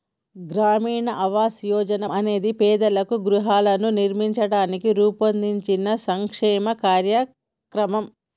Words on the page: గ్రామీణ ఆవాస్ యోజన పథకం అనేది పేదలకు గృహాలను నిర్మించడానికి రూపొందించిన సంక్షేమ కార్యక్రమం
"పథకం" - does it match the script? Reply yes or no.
no